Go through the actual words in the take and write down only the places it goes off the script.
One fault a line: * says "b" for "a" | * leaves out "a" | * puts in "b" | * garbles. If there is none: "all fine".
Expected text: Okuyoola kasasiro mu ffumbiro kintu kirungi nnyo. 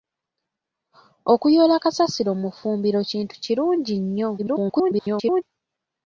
* garbles